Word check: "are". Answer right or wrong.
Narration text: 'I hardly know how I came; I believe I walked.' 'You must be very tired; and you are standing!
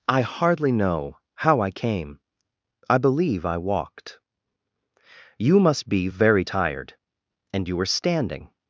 wrong